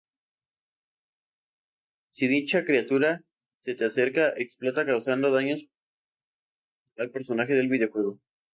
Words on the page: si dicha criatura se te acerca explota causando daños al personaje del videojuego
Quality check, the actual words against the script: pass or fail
pass